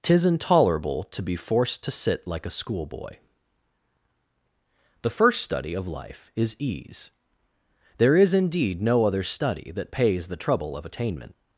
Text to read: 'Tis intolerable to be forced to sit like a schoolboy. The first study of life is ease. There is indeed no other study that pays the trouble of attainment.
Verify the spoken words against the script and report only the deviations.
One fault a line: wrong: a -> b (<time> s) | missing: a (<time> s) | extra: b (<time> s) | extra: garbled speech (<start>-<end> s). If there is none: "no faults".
no faults